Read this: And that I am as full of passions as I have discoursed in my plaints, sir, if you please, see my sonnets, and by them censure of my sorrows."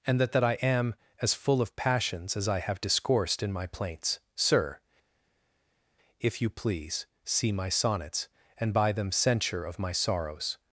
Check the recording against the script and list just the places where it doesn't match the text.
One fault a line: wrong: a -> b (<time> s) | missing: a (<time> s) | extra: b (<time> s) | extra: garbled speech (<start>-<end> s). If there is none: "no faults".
extra: that (0.3 s)